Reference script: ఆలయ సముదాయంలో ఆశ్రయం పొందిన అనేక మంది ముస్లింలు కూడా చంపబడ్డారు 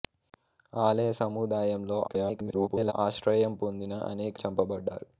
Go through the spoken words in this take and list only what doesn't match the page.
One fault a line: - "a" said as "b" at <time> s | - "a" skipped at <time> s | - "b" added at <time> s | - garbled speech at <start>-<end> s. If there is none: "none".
- garbled speech at 2.1-2.9 s
- "మంది ముస్లింలు కూడా" skipped at 4.4 s